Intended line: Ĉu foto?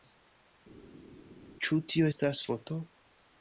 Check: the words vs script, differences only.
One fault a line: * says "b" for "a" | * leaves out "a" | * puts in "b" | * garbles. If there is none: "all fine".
* puts in "tio estas"